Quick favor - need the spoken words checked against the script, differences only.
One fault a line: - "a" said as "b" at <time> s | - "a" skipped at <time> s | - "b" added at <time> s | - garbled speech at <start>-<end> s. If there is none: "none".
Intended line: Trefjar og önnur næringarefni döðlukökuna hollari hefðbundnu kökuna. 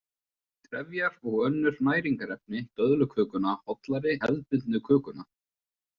none